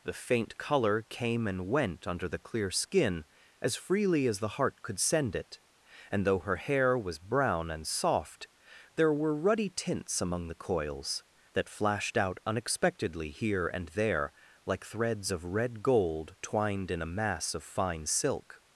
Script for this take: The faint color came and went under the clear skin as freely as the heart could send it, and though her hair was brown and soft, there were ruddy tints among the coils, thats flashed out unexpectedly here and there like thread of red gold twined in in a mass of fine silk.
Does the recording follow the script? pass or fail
fail